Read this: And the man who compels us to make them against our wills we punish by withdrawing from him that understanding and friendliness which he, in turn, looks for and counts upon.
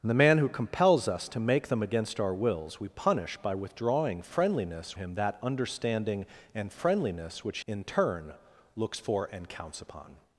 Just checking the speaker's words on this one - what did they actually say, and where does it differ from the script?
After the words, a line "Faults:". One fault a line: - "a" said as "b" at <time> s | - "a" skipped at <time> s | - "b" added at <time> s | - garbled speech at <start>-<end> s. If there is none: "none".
And the man who compels us to make them against our wills we punish by withdrawing friendliness him that understanding and friendliness which in turn, looks for and counts upon.
Faults:
- "from" said as "friendliness" at 4.2 s
- "he" skipped at 7.6 s